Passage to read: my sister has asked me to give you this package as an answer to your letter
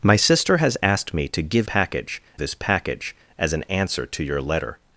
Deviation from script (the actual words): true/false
true